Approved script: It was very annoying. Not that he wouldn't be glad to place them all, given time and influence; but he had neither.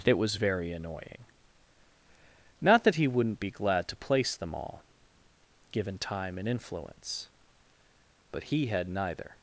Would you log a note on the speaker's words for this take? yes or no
no